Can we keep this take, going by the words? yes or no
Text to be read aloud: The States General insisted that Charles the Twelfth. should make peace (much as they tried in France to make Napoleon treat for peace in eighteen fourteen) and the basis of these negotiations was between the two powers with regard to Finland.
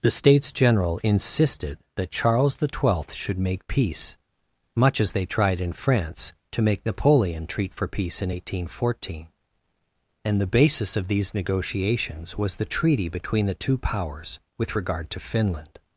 no